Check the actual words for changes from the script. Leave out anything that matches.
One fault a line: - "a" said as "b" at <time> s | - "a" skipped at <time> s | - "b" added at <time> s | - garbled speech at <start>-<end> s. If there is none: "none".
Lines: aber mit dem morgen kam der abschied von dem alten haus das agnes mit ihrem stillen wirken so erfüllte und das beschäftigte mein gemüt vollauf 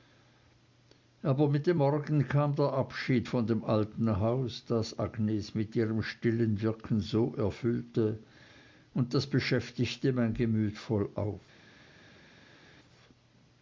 none